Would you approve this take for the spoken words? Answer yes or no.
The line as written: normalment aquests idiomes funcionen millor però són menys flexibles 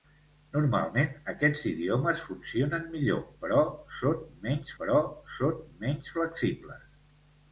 no